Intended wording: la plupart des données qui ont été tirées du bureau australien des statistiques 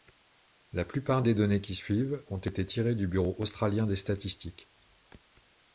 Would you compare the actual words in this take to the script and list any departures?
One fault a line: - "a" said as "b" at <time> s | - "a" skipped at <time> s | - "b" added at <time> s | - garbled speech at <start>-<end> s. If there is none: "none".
- "suivent" added at 1.8 s